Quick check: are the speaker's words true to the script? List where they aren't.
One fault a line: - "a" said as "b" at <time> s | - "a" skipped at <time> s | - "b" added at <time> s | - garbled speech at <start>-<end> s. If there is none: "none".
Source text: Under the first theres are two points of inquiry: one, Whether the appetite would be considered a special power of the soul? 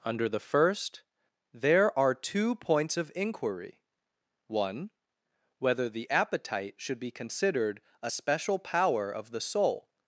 - "theres" said as "there" at 1.5 s
- "would" said as "should" at 6.8 s